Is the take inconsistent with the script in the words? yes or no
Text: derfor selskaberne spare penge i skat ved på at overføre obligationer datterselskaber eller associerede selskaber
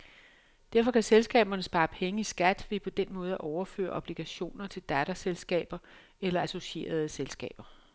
yes